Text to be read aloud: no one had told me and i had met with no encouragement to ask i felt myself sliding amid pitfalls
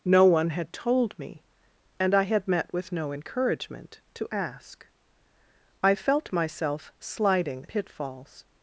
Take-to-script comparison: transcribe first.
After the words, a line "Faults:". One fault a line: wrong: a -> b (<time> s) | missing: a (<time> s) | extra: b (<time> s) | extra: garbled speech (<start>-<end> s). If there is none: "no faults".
no one had told me and i had met with no encouragement to ask i felt myself sliding pitfalls
Faults:
missing: amid (7.7 s)